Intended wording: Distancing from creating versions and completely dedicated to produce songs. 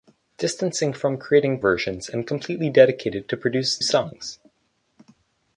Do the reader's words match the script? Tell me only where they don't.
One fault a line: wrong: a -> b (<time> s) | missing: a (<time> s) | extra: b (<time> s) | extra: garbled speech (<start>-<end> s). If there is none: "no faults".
no faults